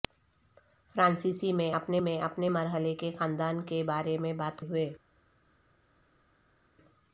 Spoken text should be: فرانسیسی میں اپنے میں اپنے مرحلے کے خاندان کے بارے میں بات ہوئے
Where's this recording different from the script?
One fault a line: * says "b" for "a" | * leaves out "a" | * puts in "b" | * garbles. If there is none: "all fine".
all fine